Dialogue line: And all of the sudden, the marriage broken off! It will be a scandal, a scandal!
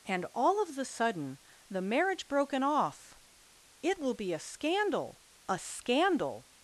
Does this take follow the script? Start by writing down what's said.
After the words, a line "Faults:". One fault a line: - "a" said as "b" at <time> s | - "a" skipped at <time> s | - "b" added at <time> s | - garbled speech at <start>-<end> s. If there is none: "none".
And all of the sudden, the marriage broken off! It will be a scandal, a scandal!
Faults:
none